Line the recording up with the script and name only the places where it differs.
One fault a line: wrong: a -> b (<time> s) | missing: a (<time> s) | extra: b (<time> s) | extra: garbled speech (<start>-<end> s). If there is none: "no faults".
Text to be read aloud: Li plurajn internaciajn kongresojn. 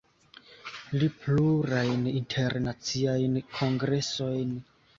no faults